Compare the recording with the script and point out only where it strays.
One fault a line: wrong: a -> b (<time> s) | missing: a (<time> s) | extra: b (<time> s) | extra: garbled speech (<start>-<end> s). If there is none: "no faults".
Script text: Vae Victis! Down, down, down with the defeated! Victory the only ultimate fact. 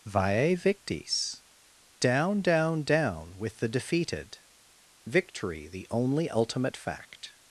no faults